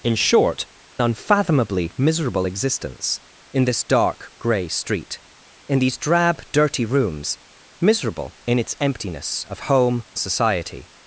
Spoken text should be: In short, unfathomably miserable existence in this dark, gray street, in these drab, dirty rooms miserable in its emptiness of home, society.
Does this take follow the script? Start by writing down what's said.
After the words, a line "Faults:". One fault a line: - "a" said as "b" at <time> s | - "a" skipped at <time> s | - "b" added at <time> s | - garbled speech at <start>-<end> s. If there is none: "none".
In short, unfathomably miserable existence in this dark, gray street, in these drab, dirty rooms miserable in its emptiness of home, society.
Faults:
none